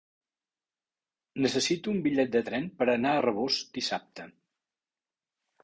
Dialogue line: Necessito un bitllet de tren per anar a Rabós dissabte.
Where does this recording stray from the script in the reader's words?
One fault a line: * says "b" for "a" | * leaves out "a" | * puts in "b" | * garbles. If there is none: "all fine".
all fine